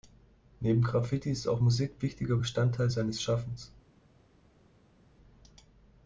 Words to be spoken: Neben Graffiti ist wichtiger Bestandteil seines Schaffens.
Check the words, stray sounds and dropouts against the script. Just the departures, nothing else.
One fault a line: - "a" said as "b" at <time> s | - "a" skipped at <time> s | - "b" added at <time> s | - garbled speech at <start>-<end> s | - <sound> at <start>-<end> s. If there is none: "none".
- "auch Musik" added at 1.4 s